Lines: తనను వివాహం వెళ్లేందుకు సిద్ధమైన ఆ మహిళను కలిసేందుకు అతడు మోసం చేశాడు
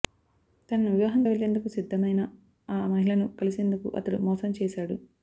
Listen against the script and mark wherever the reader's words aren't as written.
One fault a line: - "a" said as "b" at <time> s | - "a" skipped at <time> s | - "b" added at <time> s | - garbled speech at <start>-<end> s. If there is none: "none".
none